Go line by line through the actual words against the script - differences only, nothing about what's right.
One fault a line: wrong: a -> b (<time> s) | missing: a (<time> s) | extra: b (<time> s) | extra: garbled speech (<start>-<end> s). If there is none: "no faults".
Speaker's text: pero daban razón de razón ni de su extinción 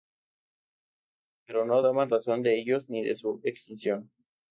extra: no (1.6 s)
wrong: razón -> ellos (2.6 s)